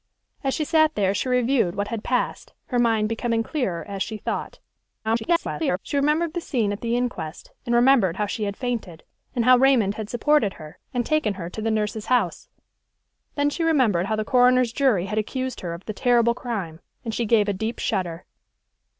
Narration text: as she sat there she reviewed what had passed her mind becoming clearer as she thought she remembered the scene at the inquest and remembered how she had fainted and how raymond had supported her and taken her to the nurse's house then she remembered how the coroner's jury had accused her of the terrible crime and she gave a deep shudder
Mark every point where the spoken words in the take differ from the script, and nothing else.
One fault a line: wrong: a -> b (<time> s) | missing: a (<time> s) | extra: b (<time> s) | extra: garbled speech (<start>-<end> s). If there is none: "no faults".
extra: garbled speech (5.0-5.8 s)